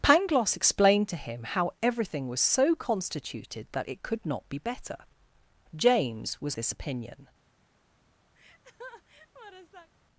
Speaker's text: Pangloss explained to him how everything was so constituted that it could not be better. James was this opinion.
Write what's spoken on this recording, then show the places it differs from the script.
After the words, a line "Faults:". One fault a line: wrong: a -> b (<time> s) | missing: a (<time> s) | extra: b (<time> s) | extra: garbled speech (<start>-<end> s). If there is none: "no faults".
Pangloss explained to him how everything was so constituted that it could not be better. James was this opinion.
Faults:
no faults